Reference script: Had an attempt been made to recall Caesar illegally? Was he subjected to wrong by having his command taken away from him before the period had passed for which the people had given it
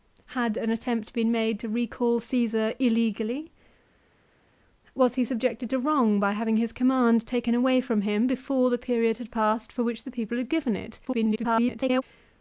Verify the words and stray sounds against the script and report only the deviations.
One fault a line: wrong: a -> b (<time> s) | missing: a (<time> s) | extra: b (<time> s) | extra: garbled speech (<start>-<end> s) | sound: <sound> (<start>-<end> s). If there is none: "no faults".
extra: garbled speech (11.0-12.0 s)